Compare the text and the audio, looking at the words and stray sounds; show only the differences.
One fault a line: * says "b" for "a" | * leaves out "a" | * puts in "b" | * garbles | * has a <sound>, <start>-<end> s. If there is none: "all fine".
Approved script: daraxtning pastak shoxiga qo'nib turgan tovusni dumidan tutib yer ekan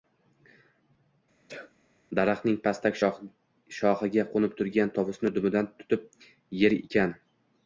* has a sneeze, 1.5-1.7 s